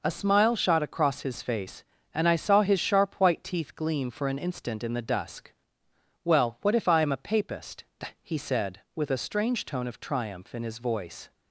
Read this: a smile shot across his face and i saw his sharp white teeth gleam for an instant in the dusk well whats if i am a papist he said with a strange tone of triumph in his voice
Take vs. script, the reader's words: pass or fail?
fail